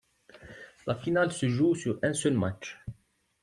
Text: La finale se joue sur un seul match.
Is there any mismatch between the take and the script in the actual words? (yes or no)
no